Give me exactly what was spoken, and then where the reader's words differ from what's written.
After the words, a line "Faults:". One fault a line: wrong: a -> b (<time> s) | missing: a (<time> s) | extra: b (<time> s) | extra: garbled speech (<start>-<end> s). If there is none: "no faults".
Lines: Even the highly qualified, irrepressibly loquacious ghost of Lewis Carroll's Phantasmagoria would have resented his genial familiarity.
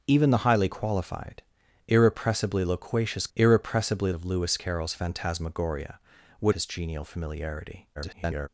Even the highly qualified, irrepressibly loquacious irrepressibly of Lewis Carroll's Phantasmagoria would his genial familiarity. [garbled]
Faults:
wrong: ghost -> irrepressibly (3.4 s)
missing: have resented (6.5 s)
extra: garbled speech (8.0-8.5 s)